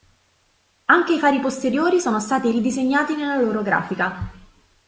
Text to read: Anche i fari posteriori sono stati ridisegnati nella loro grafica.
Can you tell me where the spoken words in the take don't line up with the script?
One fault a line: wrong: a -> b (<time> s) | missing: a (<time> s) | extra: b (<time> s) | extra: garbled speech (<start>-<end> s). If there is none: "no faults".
no faults